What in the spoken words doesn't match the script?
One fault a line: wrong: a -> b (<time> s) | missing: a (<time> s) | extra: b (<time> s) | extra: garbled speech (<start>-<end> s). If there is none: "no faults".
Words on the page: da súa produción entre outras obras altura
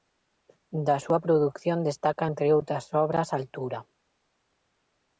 extra: destaca (1.9 s)